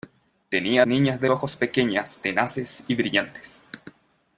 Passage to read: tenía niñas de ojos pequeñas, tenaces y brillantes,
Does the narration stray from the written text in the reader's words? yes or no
no